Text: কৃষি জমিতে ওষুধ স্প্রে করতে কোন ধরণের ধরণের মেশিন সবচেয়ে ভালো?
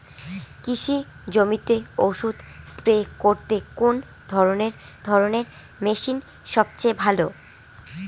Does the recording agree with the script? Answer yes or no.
yes